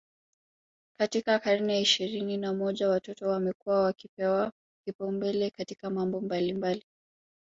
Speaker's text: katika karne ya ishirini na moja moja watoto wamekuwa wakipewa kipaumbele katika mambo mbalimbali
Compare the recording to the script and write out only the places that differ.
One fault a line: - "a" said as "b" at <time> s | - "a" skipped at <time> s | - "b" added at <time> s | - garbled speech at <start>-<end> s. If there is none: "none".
- "moja" skipped at 2.9 s